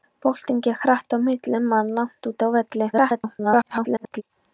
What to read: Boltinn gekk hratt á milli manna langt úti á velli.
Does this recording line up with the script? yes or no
no